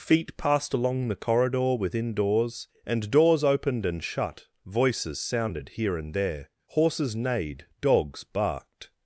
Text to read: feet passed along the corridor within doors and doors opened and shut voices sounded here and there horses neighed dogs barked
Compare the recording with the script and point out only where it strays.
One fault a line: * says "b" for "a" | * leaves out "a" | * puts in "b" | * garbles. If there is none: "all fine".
all fine